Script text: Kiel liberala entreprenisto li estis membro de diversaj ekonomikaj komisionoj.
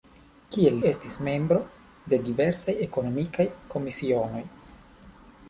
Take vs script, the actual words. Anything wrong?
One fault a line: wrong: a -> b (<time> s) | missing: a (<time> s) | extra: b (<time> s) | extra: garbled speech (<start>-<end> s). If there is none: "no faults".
missing: liberala entreprenisto li (0.8 s)